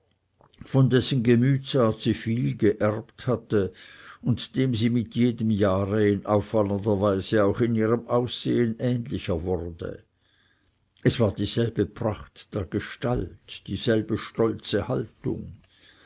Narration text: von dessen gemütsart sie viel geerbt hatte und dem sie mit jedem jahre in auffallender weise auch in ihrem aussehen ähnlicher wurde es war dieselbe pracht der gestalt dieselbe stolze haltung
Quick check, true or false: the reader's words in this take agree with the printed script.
true